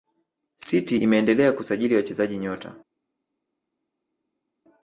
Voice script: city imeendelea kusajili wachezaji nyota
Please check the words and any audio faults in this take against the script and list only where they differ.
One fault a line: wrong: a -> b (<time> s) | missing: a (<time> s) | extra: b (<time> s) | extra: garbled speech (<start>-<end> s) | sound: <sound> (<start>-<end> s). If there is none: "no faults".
no faults